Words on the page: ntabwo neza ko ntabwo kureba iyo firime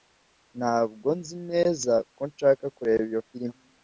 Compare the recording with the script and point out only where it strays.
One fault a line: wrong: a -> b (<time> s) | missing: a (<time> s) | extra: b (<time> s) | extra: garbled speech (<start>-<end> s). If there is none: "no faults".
extra: nzi (1.2 s)
wrong: ntabwo -> nshaka (2.3 s)